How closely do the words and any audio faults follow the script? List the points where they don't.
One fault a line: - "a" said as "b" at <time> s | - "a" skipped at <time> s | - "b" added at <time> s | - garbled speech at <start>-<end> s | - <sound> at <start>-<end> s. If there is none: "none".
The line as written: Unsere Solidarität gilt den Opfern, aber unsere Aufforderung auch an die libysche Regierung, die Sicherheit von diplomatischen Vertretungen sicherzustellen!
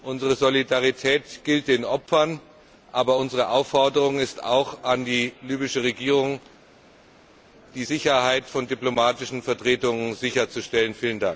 - "ist" added at 4.2 s